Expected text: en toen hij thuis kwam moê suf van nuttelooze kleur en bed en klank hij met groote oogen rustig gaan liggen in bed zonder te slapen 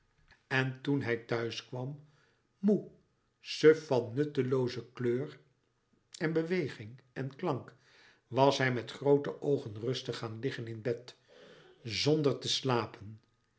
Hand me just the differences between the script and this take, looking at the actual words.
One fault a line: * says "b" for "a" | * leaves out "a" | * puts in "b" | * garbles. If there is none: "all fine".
* says "beweging" for "bed"
* puts in "was"